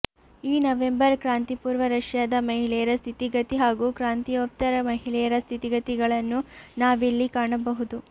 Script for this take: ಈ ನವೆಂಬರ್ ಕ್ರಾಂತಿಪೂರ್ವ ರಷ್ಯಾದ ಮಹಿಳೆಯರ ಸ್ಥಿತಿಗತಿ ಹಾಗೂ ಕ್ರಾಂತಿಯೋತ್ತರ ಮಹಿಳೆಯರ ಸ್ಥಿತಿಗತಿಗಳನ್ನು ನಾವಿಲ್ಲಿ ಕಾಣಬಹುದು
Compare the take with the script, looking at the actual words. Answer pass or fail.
pass